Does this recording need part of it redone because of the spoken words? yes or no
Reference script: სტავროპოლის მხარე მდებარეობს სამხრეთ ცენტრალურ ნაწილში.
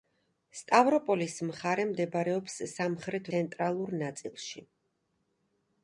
no